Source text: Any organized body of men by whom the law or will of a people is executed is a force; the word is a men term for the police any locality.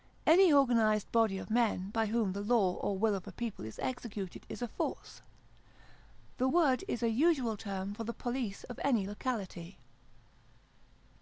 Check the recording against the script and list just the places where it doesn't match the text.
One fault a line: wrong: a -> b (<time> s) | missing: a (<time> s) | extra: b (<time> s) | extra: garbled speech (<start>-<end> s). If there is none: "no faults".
wrong: men -> usual (7.1 s)
extra: of (8.6 s)